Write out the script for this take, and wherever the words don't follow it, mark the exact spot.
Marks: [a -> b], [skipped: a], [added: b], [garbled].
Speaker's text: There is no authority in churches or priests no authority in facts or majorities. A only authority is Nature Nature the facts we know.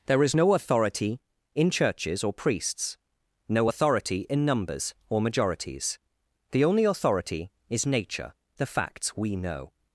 There is no authority in churches or priests no authority in [facts -> numbers] or majorities. [A -> The] only authority is Nature [skipped: Nature] the facts we know.